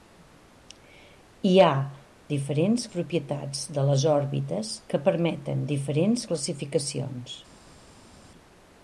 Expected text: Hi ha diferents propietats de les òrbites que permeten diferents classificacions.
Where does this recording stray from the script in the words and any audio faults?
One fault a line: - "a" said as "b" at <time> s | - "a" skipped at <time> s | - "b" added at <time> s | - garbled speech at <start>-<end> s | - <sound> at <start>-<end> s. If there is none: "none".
none